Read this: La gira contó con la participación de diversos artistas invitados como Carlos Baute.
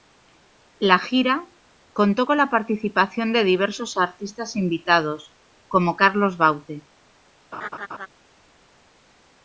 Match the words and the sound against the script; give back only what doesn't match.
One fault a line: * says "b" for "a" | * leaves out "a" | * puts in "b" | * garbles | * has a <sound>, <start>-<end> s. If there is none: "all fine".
* has a laugh, 7.5-8.1 s